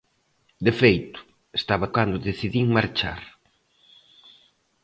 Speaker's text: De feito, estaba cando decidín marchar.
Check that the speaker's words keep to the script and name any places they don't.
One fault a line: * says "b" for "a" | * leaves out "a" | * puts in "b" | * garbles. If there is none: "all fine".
all fine